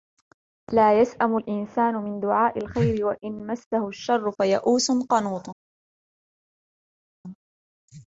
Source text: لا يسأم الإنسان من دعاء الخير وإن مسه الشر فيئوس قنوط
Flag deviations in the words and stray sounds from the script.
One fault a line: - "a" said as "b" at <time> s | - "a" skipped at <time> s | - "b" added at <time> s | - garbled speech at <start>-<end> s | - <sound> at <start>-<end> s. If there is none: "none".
none